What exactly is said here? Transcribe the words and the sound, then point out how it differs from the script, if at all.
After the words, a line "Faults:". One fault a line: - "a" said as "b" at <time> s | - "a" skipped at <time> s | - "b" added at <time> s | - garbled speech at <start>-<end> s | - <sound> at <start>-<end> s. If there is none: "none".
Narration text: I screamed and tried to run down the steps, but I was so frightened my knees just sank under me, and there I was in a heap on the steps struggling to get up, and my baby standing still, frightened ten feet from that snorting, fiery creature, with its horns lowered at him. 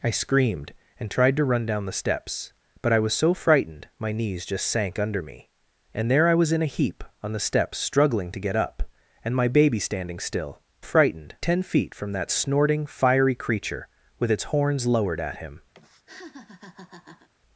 I screamed and tried to run down the steps, but I was so frightened my knees just sank under me, and there I was in a heap on the steps struggling to get up, and my baby standing still, frightened ten feet from that snorting, fiery creature, with its horns lowered at him.
Faults:
- laugh at 15.7-17.3 s